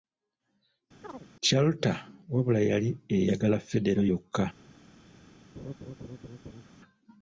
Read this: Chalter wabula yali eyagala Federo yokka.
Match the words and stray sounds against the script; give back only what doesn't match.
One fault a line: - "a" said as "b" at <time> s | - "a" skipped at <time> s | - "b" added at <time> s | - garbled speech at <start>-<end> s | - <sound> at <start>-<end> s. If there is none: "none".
- chirp at 1.0-1.3 s
- laugh at 5.6-6.6 s